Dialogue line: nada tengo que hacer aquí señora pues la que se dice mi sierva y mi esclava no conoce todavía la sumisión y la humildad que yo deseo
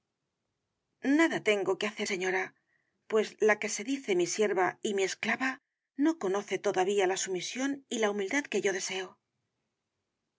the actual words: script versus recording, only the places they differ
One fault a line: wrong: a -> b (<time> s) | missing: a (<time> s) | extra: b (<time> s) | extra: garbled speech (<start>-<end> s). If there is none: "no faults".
missing: aquí (2.1 s)